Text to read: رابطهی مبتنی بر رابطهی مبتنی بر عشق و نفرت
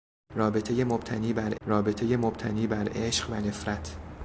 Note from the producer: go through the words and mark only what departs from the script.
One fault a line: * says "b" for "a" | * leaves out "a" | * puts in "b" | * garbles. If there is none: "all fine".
all fine